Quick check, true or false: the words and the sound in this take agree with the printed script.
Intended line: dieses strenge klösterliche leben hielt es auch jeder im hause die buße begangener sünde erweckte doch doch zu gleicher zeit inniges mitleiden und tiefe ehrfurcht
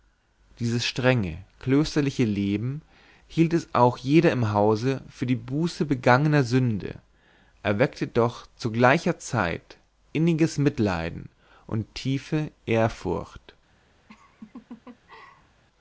false